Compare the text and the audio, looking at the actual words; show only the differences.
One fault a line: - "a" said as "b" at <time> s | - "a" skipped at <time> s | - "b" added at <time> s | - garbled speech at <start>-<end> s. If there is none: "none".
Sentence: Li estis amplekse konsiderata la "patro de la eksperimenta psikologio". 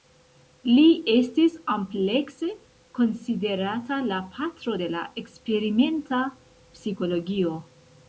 none